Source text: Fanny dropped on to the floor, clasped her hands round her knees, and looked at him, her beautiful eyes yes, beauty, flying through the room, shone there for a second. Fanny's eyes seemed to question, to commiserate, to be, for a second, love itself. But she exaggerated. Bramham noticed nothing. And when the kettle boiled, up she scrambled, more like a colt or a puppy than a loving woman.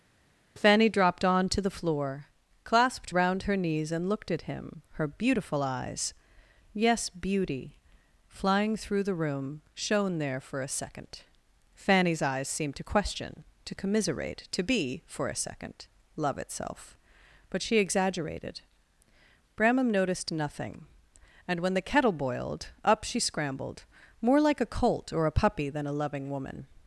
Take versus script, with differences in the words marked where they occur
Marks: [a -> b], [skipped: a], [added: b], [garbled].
Fanny dropped on to the floor, clasped [skipped: her hands] round her knees, and looked at him, her beautiful eyes yes, beauty, flying through the room, shone there for a second. Fanny's eyes seemed to question, to commiserate, to be, for a second, love itself. But she exaggerated. Bramham noticed nothing. And when the kettle boiled, up she scrambled, more like a colt or a puppy than a loving woman.